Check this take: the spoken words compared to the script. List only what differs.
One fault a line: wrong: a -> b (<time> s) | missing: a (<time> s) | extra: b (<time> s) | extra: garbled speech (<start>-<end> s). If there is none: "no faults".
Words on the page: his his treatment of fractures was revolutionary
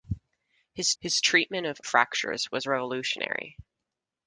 no faults